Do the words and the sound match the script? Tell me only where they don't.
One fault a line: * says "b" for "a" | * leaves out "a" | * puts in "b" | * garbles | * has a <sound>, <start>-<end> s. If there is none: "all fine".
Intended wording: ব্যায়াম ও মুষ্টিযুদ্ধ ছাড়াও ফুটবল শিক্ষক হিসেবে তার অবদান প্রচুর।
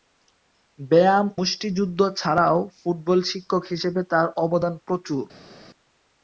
* leaves out "ও"